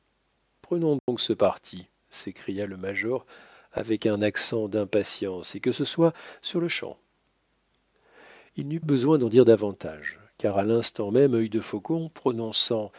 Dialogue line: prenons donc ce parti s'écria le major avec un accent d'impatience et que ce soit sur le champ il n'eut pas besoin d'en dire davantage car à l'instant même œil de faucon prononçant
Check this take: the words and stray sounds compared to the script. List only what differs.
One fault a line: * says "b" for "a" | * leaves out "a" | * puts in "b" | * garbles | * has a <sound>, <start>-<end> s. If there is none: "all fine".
* has a dropout, 1.0-1.1 s
* leaves out "pas"